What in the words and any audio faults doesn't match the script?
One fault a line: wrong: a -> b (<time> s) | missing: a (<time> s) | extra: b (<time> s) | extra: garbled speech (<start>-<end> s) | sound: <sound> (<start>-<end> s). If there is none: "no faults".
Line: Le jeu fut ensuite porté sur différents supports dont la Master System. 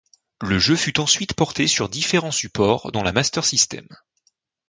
no faults